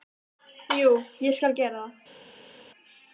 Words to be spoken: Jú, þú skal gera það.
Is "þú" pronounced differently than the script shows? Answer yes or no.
yes